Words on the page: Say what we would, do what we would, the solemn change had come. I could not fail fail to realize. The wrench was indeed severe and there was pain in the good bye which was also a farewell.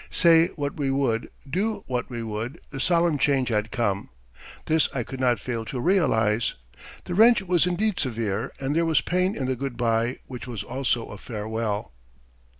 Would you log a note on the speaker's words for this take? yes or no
yes